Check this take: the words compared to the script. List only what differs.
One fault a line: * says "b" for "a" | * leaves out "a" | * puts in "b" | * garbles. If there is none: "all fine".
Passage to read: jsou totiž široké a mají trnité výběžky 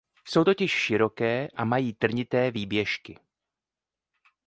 all fine